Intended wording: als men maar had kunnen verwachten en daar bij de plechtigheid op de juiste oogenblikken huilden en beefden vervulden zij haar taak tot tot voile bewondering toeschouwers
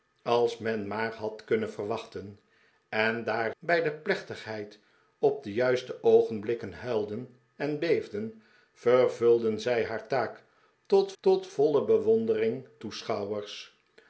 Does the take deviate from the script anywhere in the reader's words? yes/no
no